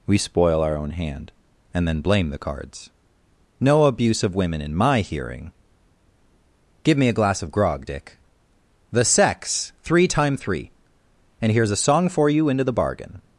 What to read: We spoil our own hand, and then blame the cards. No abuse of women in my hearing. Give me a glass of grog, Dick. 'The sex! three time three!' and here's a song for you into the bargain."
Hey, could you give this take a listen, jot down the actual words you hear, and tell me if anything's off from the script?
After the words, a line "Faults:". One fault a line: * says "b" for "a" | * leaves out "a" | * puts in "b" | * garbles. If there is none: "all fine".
We spoil our own hand, and then blame the cards. No abuse of women in my hearing. Give me a glass of grog, Dick. 'The sex! three time three!' and here's a song for you into the bargain."
Faults:
all fine